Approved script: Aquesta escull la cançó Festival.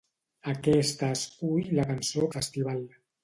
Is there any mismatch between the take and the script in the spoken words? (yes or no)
no